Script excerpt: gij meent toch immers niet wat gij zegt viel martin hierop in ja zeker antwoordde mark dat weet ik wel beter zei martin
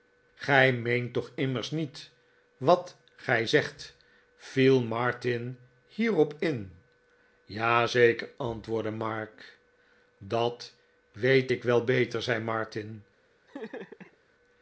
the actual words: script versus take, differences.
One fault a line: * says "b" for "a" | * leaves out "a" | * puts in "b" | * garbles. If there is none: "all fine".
all fine